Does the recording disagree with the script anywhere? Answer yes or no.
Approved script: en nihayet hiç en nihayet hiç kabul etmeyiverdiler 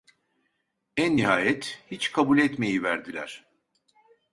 yes